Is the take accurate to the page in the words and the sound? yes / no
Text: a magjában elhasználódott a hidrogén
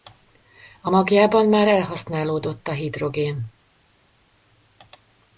no